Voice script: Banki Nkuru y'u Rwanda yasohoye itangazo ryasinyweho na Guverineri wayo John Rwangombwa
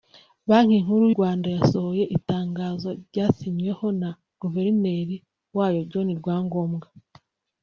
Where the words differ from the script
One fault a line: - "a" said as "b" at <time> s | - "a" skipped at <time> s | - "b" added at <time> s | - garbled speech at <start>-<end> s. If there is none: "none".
- "y'u" skipped at 1.1 s